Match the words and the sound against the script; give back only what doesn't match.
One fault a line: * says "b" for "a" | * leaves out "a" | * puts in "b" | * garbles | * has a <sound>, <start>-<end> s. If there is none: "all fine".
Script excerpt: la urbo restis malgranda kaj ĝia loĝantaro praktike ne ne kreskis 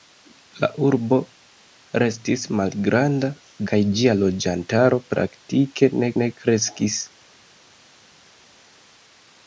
all fine